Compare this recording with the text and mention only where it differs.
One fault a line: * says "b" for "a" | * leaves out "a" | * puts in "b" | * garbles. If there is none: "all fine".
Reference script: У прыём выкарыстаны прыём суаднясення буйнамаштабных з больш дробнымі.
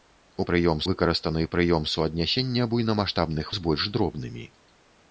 all fine